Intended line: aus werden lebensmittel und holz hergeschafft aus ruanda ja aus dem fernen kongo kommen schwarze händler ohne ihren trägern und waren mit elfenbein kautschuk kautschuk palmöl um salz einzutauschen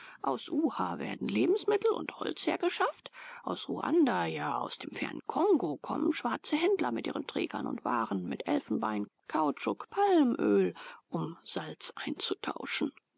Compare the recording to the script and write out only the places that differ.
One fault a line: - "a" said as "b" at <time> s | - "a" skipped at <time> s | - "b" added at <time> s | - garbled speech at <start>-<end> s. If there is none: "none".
- "uha" added at 0.5 s
- "ohne" said as "mit" at 6.9 s
- "kautschuk" skipped at 9.9 s